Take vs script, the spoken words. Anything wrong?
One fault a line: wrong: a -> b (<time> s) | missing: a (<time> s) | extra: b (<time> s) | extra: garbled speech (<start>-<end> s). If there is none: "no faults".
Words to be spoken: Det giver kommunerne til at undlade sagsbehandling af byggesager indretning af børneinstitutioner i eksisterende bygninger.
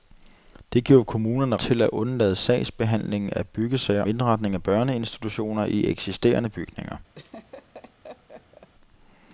no faults